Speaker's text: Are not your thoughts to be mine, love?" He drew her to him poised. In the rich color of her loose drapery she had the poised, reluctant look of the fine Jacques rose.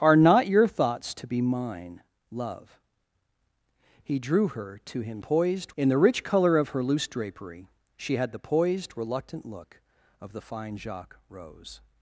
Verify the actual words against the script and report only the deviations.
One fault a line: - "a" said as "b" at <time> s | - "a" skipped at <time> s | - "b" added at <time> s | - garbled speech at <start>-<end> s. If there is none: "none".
none